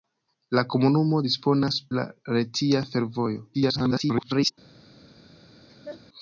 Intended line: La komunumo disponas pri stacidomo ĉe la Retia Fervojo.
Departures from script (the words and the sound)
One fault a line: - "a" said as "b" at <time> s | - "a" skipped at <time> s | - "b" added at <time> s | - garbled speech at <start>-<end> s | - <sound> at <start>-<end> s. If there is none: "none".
- "pri stacidomo ĉe" skipped at 1.8 s
- garbled speech at 3.5-4.5 s
- laugh at 5.7-6.0 s